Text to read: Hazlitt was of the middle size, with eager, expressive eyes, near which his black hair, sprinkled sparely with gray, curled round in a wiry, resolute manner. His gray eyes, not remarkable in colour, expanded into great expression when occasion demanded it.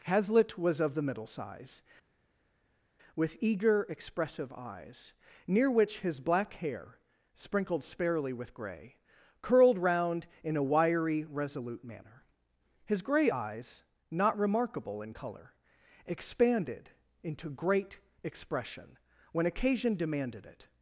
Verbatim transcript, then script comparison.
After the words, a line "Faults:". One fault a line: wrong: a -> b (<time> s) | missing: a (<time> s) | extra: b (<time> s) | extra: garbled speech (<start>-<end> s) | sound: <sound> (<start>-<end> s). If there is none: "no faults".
Hazlitt was of the middle size, with eager, expressive eyes, near which his black hair, sprinkled sparely with gray, curled round in a wiry, resolute manner. His gray eyes, not remarkable in colour, expanded into great expression when occasion demanded it.
Faults:
no faults